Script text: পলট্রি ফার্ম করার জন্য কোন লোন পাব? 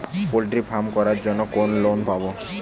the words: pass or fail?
pass